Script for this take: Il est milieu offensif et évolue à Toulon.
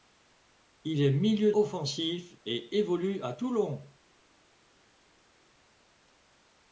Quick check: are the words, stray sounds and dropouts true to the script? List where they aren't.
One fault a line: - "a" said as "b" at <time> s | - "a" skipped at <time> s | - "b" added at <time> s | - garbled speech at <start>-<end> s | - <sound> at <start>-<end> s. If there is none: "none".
none